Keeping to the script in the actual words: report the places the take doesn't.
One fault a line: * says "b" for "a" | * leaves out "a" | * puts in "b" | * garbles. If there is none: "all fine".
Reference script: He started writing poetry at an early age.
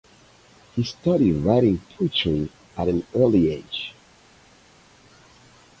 all fine